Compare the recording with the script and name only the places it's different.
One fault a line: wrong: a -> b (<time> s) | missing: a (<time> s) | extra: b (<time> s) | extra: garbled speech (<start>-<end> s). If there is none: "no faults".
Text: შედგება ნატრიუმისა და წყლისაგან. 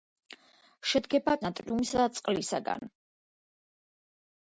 no faults